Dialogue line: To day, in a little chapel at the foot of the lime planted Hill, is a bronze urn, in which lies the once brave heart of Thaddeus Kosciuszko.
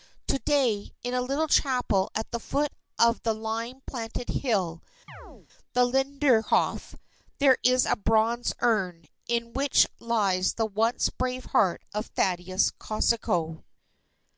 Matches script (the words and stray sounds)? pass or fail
fail